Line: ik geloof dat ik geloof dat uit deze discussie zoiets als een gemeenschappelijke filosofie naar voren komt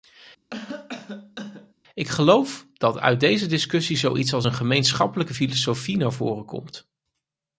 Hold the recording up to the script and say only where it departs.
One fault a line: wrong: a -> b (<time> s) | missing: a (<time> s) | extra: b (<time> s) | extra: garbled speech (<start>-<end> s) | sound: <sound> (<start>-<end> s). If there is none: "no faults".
sound: cough (0.5-1.7 s)
missing: ik geloof dat (3.0 s)